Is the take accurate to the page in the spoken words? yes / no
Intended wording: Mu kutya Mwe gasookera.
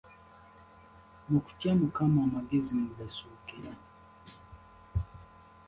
no